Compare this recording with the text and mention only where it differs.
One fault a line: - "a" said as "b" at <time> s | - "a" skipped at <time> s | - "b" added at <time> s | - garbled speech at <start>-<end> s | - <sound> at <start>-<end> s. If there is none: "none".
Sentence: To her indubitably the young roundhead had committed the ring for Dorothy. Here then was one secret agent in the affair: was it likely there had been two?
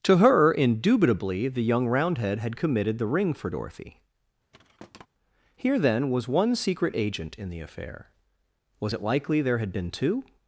- thud at 4.5-5.1 s